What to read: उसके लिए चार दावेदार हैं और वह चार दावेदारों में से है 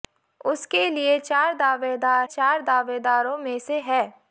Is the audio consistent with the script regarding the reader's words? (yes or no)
no